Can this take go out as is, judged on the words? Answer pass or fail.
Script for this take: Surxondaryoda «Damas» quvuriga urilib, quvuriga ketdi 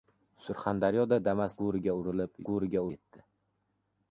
pass